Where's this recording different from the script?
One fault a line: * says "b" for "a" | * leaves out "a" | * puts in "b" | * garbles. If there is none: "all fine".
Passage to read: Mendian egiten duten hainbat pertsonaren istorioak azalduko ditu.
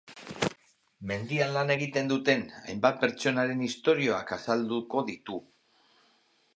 * puts in "lan"